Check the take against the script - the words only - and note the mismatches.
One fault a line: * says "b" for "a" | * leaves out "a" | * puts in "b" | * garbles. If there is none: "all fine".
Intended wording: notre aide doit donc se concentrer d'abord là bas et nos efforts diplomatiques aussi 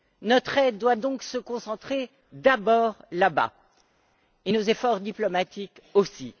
all fine